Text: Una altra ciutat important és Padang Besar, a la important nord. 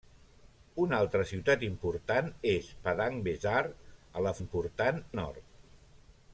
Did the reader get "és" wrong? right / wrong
right